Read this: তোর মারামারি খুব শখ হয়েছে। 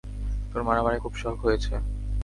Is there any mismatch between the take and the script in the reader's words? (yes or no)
no